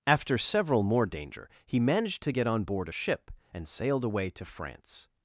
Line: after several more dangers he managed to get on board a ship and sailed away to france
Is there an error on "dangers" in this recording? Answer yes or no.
yes